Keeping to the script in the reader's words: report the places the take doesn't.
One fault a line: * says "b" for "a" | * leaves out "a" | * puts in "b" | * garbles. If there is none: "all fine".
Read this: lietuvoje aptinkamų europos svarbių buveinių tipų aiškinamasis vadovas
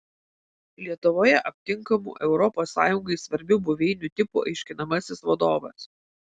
* puts in "sąjungai"